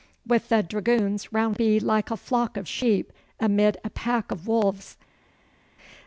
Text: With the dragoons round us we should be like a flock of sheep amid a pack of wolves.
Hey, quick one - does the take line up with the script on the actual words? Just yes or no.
no